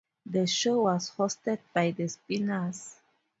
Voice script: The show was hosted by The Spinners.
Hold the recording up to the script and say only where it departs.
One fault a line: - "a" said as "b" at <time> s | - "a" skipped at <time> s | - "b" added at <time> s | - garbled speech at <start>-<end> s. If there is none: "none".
none